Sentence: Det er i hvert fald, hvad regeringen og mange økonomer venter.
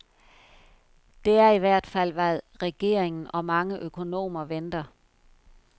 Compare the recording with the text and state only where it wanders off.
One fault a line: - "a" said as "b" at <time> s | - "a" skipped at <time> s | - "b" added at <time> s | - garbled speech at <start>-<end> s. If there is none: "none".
none